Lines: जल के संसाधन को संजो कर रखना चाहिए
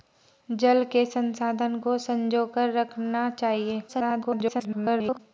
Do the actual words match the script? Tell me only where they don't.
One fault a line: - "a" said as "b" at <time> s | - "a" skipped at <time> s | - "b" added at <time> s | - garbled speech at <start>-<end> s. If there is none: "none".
- garbled speech at 3.9-5.2 s